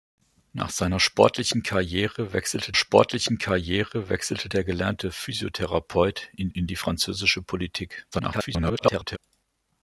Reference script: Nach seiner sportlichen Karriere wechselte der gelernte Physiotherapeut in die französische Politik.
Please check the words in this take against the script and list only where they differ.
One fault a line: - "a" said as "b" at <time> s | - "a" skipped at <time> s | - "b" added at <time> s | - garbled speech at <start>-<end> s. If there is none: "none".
- "sportlichen Karriere wechselte" added at 2.7 s
- "in" added at 6.5 s
- garbled speech at 8.1-9.2 s